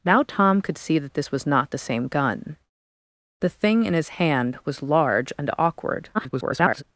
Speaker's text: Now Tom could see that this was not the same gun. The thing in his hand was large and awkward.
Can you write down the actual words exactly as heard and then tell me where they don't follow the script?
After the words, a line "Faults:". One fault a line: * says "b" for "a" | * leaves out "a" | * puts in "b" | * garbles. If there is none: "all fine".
Now Tom could see that this was not the same gun. The thing in his hand was large and awkward. [garbled]
Faults:
* garbles